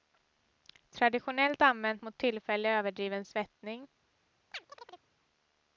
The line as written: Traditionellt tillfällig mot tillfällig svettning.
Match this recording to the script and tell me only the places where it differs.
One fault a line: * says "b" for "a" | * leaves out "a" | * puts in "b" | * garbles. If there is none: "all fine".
* says "använt" for "tillfällig"
* puts in "överdriven"